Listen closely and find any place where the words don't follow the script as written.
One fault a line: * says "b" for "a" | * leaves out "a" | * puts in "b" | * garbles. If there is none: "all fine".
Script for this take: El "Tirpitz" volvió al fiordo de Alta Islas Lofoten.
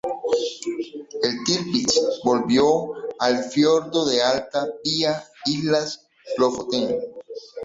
* puts in "vía"